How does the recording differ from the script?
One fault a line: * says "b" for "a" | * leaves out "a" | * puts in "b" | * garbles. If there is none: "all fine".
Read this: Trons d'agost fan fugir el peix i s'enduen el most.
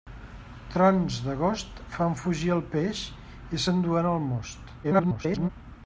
* garbles